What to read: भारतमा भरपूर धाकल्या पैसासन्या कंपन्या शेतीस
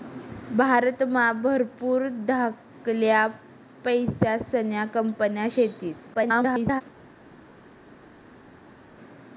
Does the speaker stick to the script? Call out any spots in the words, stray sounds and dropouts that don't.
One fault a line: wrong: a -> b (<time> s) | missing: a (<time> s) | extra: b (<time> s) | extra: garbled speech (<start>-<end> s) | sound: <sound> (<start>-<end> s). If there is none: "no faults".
extra: garbled speech (6.1-6.8 s)